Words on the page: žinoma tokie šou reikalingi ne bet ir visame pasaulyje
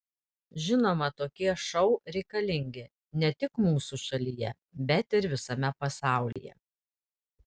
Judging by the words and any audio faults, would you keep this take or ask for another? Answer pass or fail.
fail